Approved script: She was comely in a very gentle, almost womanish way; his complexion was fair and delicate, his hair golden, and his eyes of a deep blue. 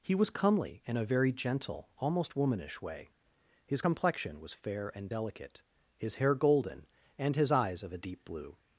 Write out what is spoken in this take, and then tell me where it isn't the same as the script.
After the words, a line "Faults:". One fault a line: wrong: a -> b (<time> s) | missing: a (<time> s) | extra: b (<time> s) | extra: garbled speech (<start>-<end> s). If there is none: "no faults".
He was comely in a very gentle, almost womanish way; his complexion was fair and delicate, his hair golden, and his eyes of a deep blue.
Faults:
wrong: She -> He (0.0 s)